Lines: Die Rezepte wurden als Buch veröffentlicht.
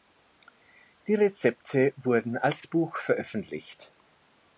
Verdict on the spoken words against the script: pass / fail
pass